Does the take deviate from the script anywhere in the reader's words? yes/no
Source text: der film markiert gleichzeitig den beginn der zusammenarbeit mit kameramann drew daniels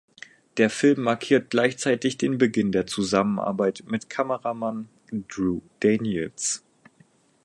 no